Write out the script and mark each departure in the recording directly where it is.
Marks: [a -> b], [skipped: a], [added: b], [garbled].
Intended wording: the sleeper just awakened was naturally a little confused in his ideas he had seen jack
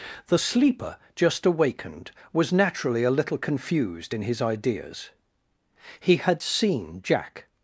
the sleeper just awakened was naturally a little confused in his ideas he had seen jack